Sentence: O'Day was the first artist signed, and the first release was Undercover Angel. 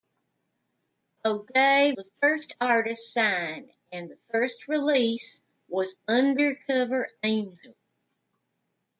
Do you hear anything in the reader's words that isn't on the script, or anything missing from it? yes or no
yes